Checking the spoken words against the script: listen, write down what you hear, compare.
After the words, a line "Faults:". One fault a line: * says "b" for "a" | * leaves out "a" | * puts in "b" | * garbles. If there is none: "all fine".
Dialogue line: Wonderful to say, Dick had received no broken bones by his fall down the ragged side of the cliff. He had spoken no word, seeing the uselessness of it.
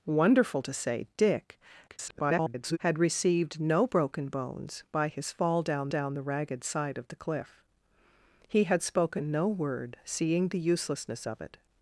Wonderful to say, Dick [garbled] had received no broken bones by his fall down down the ragged side of the cliff. He had spoken no word, seeing the uselessness of it.
Faults:
* garbles
* puts in "down"